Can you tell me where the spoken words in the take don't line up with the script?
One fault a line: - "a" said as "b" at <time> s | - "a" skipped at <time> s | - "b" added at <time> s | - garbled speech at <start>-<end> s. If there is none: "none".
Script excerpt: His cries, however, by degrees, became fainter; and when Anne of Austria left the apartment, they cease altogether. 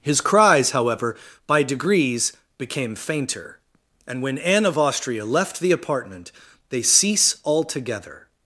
none